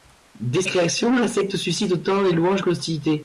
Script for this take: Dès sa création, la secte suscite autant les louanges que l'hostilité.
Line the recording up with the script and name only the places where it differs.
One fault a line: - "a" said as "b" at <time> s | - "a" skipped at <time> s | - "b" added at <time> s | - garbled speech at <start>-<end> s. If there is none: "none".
- "sa" skipped at 0.6 s